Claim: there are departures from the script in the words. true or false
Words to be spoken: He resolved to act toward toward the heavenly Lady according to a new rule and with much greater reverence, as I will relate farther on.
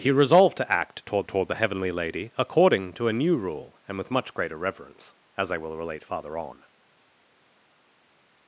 false